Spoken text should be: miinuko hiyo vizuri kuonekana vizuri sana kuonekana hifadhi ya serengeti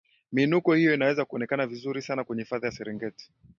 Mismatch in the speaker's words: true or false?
true